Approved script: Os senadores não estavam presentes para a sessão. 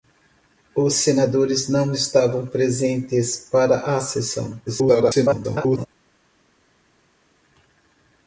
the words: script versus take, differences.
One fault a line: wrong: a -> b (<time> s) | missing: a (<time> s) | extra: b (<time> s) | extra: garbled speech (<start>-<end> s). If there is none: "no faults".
extra: garbled speech (4.7-5.9 s)